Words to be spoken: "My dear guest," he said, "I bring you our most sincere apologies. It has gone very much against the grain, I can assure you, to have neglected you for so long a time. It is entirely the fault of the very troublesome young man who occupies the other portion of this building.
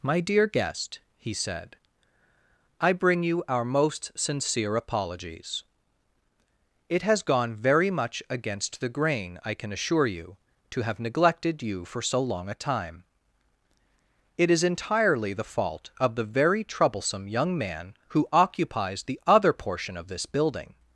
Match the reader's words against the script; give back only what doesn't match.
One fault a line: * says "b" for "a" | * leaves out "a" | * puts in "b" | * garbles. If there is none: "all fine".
all fine